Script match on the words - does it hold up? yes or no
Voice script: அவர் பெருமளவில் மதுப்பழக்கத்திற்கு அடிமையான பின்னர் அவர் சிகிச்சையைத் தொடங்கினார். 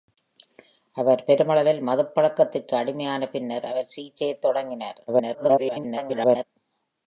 no